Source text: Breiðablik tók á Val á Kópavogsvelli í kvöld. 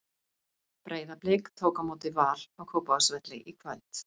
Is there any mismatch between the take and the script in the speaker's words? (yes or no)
yes